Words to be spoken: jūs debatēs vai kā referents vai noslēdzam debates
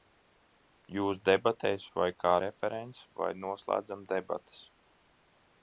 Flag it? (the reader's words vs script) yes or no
no